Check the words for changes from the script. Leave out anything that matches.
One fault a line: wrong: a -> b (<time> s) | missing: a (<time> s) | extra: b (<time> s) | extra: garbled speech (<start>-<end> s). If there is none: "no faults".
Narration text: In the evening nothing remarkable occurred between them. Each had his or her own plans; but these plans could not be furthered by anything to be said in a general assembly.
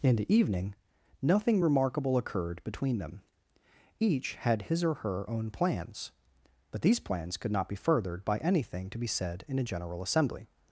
no faults